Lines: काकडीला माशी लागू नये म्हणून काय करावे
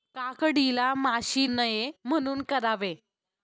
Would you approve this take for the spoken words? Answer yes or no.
no